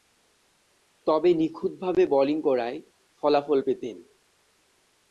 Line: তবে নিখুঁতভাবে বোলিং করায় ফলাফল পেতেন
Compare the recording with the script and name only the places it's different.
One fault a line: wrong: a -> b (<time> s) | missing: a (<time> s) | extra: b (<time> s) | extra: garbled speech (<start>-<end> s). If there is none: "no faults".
no faults